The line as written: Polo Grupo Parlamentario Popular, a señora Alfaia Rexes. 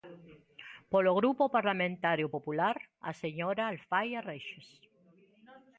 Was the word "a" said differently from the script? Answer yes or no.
no